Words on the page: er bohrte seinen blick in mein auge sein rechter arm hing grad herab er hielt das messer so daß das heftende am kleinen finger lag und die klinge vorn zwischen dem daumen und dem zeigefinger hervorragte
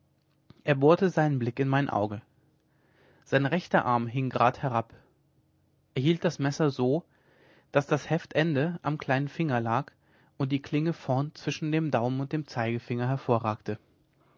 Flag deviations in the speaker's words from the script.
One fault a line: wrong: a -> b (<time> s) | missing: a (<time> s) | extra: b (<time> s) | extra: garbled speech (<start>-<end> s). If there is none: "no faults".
no faults